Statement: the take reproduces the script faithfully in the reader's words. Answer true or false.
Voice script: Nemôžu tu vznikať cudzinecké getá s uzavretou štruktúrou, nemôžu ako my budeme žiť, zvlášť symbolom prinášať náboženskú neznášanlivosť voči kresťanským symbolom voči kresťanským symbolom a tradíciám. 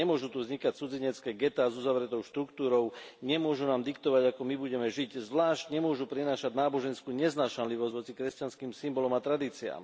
false